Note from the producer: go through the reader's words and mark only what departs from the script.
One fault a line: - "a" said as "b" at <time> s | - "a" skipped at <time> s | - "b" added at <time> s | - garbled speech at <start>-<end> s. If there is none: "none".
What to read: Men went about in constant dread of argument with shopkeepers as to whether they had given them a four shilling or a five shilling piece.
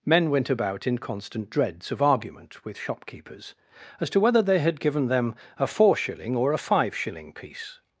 - "dread" said as "dreads" at 1.5 s